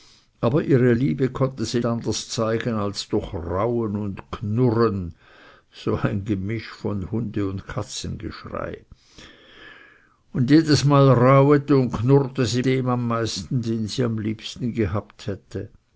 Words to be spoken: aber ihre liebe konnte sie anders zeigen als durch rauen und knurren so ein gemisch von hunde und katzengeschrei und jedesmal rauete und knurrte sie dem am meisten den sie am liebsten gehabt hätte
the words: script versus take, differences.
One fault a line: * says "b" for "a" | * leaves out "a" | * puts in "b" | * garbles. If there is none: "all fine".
all fine